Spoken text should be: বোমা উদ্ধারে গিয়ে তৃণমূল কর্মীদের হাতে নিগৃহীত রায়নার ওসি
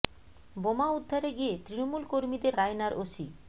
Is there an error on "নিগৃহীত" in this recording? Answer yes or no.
yes